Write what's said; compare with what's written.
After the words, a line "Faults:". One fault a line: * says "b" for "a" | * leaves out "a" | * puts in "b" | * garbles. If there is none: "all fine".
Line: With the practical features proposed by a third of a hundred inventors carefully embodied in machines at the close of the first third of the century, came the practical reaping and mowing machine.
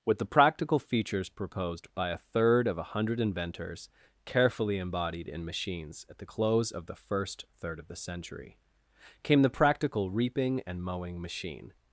With the practical features proposed by a third of a hundred inventors carefully embodied in machines at the close of the first third of the century, came the practical reaping and mowing machine.
Faults:
all fine